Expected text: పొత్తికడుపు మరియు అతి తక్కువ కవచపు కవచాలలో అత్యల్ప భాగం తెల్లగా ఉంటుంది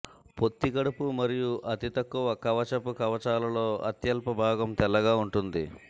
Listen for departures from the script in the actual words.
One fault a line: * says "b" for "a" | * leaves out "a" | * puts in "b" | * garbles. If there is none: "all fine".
all fine